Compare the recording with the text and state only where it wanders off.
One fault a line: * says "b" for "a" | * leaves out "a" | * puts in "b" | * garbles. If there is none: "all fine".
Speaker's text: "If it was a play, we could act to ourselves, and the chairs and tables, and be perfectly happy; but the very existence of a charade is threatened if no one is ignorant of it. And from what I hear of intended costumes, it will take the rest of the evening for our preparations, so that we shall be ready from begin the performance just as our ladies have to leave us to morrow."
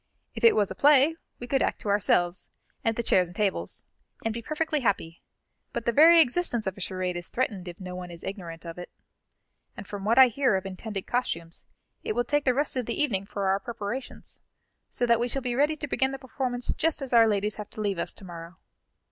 * says "to" for "from"